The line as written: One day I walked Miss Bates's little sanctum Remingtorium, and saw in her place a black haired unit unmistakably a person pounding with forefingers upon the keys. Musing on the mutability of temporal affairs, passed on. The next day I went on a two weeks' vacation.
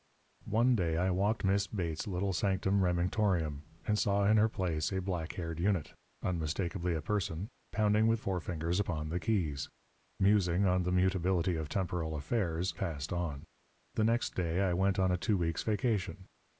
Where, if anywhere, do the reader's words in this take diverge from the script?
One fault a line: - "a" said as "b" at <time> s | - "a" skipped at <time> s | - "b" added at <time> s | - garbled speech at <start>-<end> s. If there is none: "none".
none